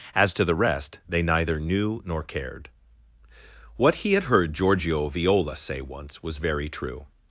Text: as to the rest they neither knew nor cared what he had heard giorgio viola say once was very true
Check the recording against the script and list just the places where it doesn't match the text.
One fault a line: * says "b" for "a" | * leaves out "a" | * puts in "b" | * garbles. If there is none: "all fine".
all fine